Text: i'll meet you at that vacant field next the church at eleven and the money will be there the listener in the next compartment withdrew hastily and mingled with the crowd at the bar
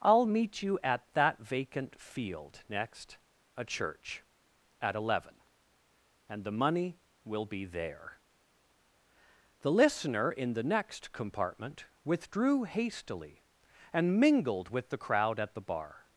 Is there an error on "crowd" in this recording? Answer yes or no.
no